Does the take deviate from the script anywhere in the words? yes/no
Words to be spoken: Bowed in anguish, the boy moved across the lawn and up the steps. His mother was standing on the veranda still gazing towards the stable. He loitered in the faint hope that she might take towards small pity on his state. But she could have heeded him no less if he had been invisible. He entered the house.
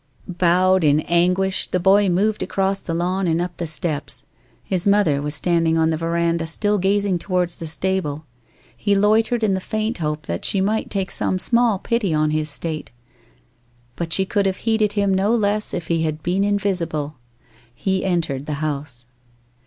yes